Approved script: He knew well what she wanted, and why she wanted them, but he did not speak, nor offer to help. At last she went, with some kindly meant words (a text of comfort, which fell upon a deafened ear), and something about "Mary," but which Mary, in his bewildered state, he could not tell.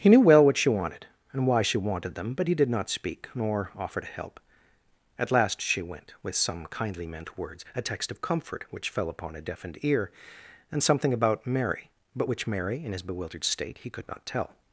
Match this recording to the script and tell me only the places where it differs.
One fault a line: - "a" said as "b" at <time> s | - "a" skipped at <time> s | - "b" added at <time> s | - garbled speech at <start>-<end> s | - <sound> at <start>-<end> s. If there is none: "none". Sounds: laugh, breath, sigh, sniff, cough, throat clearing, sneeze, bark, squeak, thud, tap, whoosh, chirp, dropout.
none